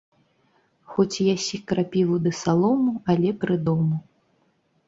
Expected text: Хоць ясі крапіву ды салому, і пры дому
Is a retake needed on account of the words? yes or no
yes